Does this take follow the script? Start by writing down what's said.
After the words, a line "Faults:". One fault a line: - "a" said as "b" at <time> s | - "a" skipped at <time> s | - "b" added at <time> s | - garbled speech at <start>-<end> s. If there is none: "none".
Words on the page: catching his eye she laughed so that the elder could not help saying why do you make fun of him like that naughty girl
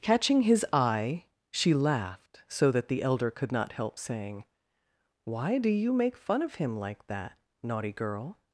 catching his eye she laughed so that the elder could not help saying why do you make fun of him like that naughty girl
Faults:
none